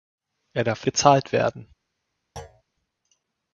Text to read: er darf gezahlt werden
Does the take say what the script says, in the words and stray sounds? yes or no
no